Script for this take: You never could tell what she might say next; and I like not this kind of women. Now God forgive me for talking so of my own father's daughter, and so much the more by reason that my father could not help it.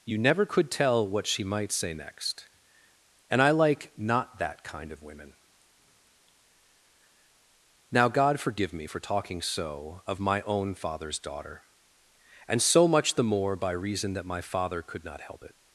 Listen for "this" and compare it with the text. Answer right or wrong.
wrong